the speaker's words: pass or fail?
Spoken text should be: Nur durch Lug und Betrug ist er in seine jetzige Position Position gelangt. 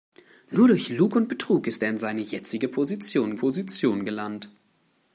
pass